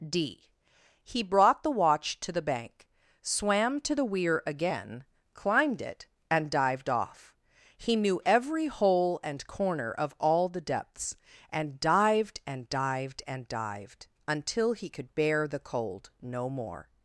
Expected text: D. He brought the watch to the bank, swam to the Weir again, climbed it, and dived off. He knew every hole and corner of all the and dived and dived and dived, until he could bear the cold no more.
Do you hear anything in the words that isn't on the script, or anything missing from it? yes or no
yes